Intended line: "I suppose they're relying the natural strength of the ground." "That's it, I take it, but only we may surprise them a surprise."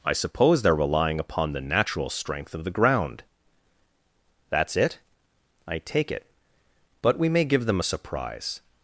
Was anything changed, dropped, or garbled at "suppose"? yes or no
no